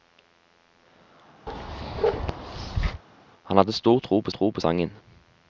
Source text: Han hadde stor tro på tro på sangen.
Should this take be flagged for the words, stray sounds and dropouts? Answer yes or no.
yes